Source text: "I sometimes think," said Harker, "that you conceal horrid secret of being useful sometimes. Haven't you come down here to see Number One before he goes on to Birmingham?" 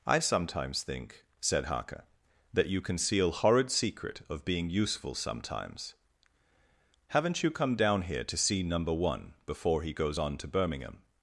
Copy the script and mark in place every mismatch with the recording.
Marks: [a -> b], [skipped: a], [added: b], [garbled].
"I sometimes think," said Harker, "that you conceal horrid secret of being useful sometimes. Haven't you come down here to see Number One before he goes on to Birmingham?"